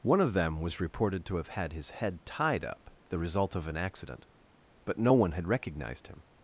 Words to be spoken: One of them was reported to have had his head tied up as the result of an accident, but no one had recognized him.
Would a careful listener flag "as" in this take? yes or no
yes